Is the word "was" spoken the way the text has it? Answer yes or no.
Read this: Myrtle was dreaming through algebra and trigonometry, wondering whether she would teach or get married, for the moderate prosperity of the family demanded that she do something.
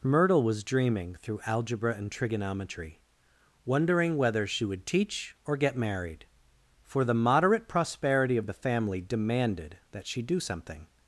yes